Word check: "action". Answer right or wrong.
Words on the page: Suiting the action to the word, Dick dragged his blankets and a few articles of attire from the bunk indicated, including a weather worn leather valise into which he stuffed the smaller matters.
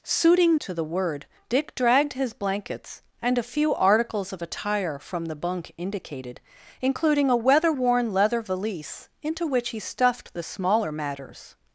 wrong